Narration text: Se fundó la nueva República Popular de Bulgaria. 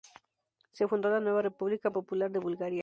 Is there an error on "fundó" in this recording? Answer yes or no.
no